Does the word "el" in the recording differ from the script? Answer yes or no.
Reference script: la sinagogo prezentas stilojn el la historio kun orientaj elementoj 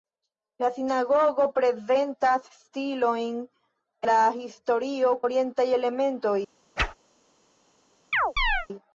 yes